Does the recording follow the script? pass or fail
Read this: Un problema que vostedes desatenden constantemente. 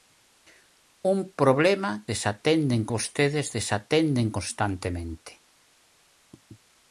fail